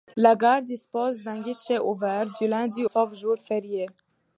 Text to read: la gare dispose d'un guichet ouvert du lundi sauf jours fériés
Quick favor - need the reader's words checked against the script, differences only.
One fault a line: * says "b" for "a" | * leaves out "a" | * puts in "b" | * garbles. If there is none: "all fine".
all fine